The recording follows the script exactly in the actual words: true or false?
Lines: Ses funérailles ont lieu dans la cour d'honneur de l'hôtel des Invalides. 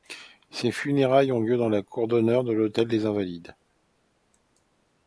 true